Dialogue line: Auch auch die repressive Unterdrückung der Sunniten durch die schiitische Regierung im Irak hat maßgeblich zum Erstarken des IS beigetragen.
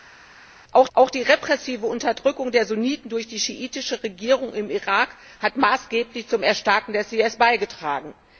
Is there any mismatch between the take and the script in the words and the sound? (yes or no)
no